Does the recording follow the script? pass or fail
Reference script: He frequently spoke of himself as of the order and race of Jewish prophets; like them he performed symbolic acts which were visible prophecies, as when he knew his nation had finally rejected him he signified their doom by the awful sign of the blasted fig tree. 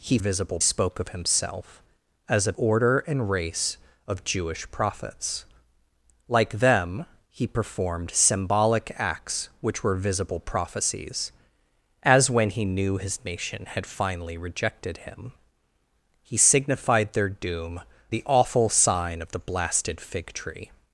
fail